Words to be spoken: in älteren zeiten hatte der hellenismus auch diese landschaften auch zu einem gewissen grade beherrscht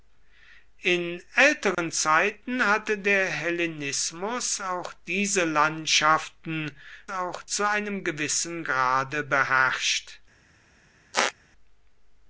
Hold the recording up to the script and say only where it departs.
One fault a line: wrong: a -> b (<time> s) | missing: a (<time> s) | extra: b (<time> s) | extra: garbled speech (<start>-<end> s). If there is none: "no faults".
no faults